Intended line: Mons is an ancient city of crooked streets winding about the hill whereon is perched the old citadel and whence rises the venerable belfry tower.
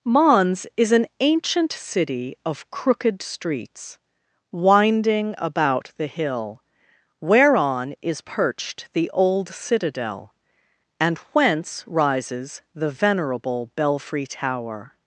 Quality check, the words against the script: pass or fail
pass